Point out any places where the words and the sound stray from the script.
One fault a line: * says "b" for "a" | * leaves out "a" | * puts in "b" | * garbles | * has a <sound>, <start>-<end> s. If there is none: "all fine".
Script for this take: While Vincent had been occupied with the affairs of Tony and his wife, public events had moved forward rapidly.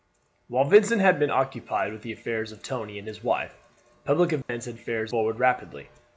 * has a dropout, 4.4-4.5 s
* says "affairs" for "moved"